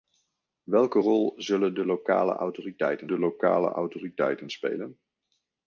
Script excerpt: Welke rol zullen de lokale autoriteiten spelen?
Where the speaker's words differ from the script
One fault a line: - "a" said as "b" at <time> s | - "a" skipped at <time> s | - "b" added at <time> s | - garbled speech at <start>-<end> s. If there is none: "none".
- "de lokale autoriteiten" added at 3.1 s